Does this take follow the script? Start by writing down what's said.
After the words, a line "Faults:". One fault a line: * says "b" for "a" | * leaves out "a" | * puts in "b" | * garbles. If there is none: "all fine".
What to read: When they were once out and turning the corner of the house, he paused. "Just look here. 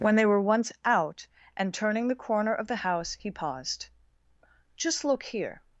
When they were once out and turning the corner of the house, he paused. "Just look here.
Faults:
all fine